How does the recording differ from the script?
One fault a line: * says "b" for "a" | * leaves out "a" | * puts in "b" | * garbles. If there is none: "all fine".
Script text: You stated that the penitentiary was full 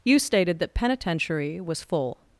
* leaves out "the"